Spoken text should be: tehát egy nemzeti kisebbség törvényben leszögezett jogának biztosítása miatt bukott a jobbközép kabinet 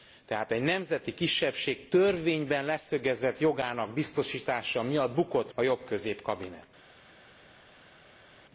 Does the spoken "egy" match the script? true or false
true